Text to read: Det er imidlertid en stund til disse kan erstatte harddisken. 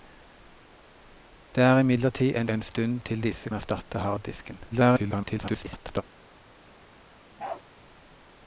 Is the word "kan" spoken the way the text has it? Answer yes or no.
no